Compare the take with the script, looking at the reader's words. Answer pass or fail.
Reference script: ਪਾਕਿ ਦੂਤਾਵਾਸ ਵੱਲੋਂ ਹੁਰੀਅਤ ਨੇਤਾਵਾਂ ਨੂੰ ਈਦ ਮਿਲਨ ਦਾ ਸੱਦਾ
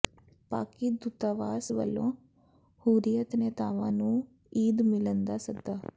pass